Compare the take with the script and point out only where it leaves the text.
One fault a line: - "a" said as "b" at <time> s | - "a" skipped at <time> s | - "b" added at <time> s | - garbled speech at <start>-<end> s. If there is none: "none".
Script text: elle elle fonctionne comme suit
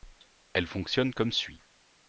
- "elle" skipped at 0.7 s